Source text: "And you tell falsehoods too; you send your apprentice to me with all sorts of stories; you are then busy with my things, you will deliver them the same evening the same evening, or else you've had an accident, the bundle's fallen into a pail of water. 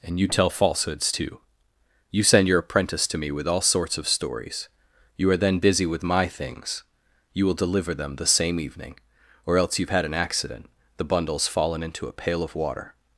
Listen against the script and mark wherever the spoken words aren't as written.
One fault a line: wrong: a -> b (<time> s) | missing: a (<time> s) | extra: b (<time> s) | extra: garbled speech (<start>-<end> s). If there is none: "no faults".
missing: the same evening (9.0 s)